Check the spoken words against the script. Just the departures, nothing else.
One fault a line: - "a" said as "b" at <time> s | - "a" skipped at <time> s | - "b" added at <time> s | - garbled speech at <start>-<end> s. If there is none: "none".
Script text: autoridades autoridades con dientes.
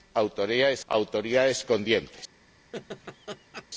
none